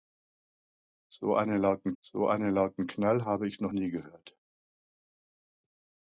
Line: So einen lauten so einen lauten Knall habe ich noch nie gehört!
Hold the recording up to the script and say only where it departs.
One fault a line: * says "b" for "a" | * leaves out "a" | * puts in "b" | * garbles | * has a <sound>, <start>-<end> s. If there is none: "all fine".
all fine